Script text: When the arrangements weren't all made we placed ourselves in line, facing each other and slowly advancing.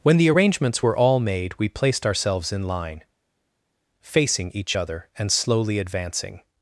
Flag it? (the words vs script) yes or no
yes